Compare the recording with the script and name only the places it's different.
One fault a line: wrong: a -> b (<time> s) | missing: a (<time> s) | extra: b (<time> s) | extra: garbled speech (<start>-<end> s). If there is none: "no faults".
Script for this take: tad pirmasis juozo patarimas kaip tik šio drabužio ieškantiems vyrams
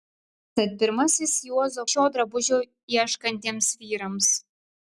missing: patarimas kaip tik (1.8 s)